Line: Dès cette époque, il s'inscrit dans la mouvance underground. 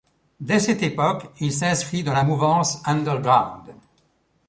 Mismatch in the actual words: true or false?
false